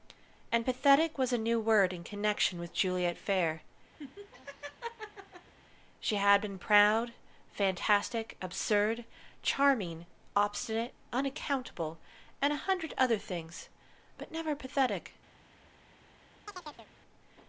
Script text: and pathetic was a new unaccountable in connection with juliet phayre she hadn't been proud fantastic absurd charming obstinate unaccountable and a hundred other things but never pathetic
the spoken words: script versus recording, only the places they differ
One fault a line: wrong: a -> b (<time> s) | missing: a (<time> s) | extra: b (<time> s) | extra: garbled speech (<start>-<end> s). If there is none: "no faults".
wrong: unaccountable -> word (1.6 s)
wrong: hadn't -> had (6.2 s)